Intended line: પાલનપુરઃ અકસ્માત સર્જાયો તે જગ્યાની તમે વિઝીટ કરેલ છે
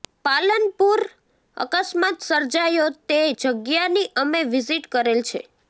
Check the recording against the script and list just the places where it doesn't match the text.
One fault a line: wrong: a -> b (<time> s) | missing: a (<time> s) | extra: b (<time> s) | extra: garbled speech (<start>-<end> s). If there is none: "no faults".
wrong: તમે -> અમે (4.1 s)